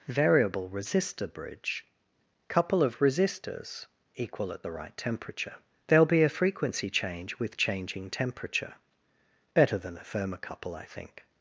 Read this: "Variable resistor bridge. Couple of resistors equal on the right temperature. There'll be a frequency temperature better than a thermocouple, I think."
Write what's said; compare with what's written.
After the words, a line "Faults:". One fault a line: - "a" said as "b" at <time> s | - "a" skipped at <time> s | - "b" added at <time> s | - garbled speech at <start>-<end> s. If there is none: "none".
"Variable resistor bridge. Couple of resistors equal at the right temperature. There'll be a frequency change with changing temperature better than a thermocouple, I think."
Faults:
- "on" said as "at" at 4.5 s
- "change with changing" added at 6.9 s